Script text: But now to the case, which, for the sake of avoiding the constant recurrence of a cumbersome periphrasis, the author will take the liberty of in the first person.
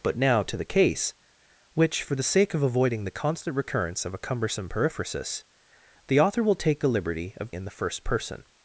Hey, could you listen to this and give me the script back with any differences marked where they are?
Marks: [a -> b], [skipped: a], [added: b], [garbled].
But now to the case, which, for the sake of avoiding the constant recurrence of a cumbersome periphrasis, the author will take the liberty of in the first person.